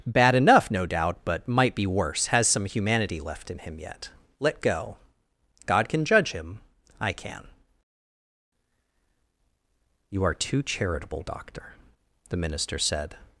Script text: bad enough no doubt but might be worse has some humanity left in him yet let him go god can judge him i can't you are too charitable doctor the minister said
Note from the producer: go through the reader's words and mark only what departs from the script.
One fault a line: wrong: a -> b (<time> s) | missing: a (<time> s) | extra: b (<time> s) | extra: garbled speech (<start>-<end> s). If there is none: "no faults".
missing: him (4.6 s)
wrong: can't -> can (7.1 s)